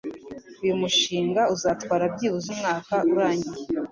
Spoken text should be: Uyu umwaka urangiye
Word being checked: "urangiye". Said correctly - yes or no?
yes